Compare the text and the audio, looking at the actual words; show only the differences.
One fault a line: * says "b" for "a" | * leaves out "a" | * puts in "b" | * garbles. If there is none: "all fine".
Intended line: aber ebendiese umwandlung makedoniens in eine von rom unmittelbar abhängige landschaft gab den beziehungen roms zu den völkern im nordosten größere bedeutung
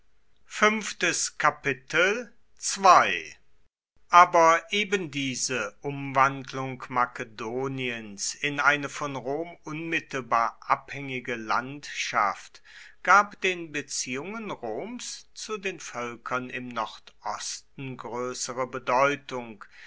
all fine